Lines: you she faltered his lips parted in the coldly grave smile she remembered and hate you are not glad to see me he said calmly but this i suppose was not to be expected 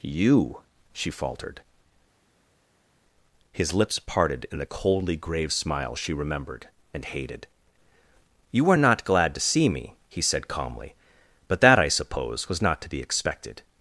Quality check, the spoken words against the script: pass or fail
fail